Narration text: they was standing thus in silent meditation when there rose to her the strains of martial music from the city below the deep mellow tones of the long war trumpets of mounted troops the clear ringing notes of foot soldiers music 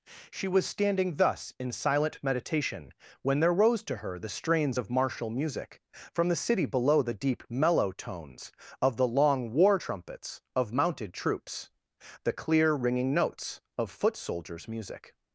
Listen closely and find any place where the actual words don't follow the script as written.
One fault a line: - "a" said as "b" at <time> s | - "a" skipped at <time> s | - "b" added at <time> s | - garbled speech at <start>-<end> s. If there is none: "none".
- "they" said as "she" at 0.3 s